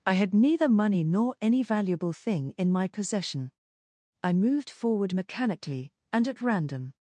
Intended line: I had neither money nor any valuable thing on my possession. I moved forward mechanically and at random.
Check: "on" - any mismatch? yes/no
yes